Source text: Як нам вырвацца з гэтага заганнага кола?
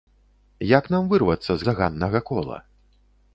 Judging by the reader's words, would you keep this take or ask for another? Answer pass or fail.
fail